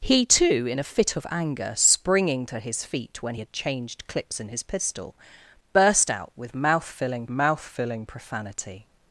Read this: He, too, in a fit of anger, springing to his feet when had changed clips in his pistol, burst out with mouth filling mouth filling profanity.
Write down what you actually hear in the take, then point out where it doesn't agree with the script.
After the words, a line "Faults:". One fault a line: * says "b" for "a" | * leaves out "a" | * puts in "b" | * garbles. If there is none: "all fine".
He, too, in a fit of anger, springing to his feet when had changed clips in his pistol, burst out with mouth filling mouth filling profanity.
Faults:
all fine